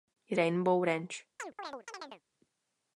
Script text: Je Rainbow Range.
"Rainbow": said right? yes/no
yes